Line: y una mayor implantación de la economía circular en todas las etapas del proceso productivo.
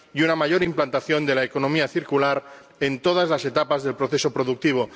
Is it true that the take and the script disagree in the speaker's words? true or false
false